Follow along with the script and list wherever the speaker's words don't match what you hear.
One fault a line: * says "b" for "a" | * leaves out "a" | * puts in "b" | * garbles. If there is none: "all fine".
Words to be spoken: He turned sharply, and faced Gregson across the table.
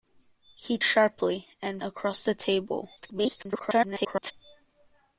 * leaves out "turned"
* leaves out "faced Gregson"
* garbles